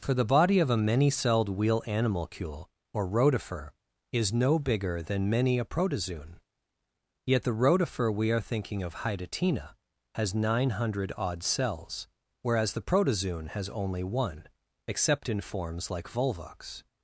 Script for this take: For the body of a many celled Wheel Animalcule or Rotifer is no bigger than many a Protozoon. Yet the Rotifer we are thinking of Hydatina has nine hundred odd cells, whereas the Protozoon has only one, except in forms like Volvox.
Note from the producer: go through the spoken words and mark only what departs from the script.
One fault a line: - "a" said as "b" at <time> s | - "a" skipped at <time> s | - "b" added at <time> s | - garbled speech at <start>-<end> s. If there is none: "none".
none